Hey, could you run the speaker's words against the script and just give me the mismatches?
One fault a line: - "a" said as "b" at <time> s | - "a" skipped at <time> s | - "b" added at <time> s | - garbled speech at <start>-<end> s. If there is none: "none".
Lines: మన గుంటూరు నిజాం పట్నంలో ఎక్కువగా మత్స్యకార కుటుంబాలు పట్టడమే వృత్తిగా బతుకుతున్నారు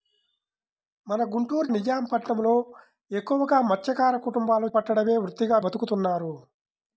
none